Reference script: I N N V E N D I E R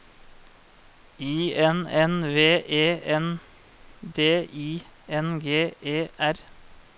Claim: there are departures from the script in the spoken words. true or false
true